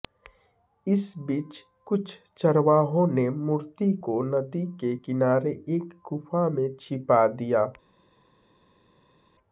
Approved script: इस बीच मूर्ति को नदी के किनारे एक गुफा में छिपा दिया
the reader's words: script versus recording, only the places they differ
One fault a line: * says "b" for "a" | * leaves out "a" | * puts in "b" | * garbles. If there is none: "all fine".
* puts in "कुछ चरवाहों ने"